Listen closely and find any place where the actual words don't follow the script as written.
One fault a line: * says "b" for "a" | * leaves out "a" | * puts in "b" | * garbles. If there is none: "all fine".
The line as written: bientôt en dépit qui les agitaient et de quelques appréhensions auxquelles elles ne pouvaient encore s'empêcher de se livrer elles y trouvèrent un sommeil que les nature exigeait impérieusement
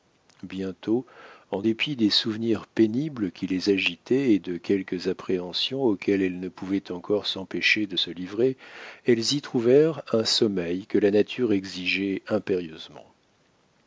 * puts in "des souvenirs pénibles"
* says "la" for "les"